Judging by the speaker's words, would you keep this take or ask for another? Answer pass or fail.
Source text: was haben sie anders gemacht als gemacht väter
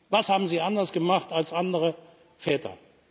fail